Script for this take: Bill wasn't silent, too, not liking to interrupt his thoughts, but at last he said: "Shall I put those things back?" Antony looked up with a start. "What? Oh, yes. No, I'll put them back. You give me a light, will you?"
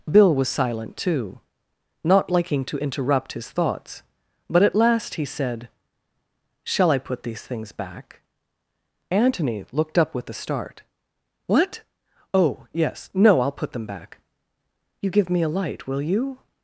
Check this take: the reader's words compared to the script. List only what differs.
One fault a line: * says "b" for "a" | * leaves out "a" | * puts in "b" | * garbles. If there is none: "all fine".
* says "was" for "wasn't"
* says "these" for "those"